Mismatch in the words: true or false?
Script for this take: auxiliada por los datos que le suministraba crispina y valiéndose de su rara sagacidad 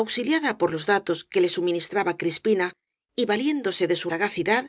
true